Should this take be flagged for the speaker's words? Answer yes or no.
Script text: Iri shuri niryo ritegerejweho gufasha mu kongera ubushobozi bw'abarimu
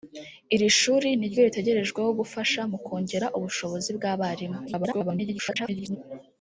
yes